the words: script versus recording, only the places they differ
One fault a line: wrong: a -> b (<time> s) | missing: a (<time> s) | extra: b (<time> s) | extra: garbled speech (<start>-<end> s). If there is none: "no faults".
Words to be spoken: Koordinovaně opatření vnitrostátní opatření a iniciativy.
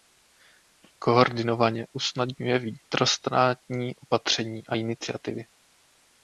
wrong: opatření -> usnadňuje (1.9 s)